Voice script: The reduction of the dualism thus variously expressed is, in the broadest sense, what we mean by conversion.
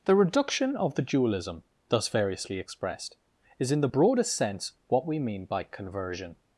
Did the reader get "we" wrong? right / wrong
right